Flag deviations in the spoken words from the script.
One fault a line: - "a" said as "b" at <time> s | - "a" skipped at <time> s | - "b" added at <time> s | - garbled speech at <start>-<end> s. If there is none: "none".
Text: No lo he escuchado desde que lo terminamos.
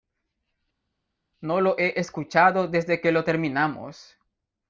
none